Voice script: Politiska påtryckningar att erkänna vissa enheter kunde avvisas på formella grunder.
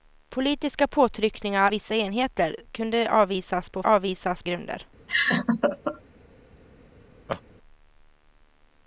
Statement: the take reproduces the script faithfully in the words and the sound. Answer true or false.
false